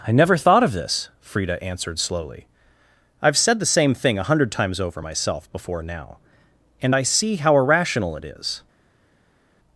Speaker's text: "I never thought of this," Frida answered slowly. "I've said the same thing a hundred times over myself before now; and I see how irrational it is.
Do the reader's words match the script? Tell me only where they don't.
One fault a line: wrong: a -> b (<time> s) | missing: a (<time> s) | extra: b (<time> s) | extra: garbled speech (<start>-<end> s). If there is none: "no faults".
no faults